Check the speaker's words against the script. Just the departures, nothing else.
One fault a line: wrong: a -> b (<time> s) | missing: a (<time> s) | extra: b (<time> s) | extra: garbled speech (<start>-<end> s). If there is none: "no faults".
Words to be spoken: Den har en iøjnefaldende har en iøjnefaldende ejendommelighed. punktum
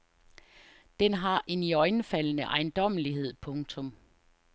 missing: har en iøjnefaldende (2.4 s)